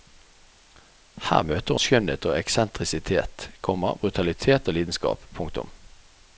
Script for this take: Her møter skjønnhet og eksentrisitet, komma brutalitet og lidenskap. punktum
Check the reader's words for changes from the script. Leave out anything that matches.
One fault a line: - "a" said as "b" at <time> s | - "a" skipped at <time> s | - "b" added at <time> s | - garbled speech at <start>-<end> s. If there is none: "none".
none